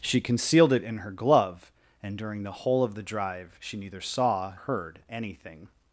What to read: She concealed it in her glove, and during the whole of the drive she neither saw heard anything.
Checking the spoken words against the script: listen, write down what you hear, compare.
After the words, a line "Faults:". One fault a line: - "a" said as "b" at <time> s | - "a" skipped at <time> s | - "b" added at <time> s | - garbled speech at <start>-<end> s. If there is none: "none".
She concealed it in her glove, and during the whole of the drive she neither saw heard anything.
Faults:
none